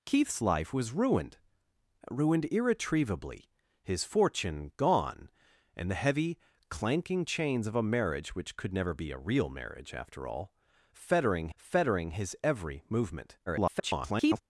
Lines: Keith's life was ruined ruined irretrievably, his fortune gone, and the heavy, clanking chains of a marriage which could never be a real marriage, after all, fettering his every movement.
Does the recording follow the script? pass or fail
fail